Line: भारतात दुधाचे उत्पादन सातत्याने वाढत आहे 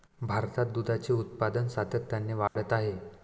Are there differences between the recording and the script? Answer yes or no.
no